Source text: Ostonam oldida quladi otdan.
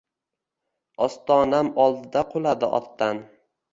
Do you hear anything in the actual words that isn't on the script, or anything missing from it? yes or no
no